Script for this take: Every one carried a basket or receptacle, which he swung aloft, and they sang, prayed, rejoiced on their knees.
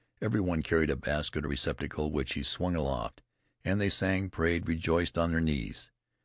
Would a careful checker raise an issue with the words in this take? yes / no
no